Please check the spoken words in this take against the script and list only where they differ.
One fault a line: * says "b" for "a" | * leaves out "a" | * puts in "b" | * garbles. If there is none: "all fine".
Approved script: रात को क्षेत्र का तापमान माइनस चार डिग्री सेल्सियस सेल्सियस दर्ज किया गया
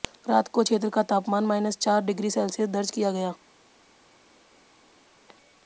* leaves out "सेल्सियस"